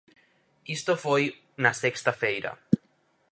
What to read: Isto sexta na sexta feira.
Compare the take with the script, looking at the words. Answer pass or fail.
fail